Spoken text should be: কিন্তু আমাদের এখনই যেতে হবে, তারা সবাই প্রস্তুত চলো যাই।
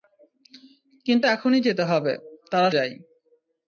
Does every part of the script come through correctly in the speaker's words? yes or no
no